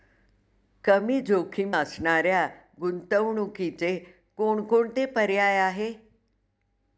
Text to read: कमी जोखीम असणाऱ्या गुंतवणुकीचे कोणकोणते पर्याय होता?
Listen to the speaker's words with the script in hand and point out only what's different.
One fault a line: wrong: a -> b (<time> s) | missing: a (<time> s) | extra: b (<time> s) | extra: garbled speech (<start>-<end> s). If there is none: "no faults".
wrong: होता -> आहे (5.6 s)